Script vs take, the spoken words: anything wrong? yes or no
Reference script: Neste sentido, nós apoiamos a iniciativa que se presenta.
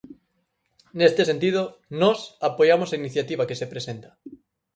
no